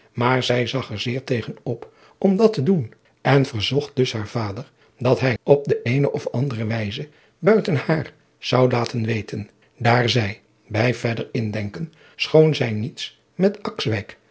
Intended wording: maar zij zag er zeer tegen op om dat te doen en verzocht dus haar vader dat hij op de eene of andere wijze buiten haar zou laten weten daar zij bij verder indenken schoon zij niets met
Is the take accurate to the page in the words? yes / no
yes